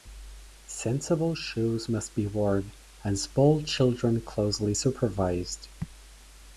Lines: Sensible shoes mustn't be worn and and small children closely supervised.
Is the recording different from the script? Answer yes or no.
yes